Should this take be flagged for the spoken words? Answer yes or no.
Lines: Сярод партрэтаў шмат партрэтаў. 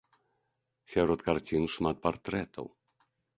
yes